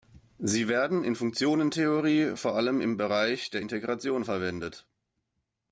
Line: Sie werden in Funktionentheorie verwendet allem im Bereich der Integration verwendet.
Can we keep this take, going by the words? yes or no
no